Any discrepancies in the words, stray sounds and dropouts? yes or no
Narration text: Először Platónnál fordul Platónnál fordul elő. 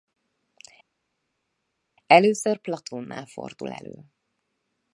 yes